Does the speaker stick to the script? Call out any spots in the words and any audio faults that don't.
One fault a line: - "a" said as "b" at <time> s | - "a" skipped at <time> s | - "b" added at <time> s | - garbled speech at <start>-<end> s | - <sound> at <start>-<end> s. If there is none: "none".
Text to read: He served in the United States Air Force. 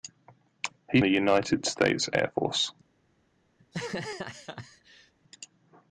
- "served in" skipped at 1.0 s
- laugh at 3.6-5.1 s